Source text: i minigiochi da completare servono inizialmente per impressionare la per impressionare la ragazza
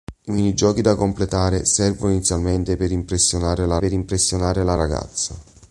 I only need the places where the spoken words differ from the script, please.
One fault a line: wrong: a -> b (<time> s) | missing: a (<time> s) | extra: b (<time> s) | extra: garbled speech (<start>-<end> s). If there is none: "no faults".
no faults